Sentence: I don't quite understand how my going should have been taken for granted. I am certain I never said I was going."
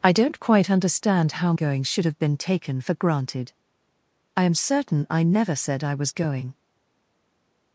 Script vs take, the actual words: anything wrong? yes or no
yes